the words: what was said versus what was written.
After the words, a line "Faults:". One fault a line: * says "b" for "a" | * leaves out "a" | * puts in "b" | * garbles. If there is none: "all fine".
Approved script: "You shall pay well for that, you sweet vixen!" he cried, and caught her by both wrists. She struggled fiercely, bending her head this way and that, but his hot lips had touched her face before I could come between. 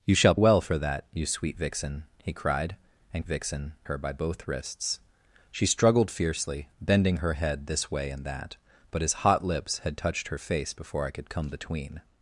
"You shall well for that, you sweet vixen!" he cried, and vixen her by both wrists. She struggled fiercely, bending her head this way and that, but his hot lips had touched her face before I could come between.
Faults:
* leaves out "pay"
* says "vixen" for "caught"